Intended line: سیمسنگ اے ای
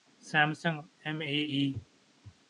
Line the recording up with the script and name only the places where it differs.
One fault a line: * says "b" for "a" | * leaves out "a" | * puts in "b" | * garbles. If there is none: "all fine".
* puts in "ایم"